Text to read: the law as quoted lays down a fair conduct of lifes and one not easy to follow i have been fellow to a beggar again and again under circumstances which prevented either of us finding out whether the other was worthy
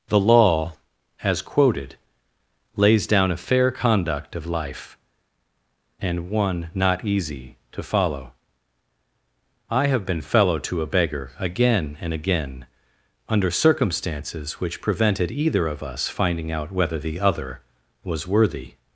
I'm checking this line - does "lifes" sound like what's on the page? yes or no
no